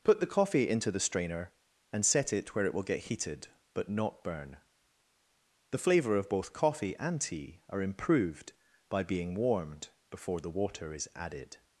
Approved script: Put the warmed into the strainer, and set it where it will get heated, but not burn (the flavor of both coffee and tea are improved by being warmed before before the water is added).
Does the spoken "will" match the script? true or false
true